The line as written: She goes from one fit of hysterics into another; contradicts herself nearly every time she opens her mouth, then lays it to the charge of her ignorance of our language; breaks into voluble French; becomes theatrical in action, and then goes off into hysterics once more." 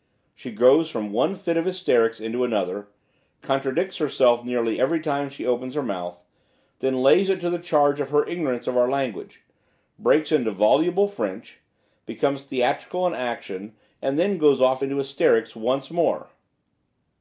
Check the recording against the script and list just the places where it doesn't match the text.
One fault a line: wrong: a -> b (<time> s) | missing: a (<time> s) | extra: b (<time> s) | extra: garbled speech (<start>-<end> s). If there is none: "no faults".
no faults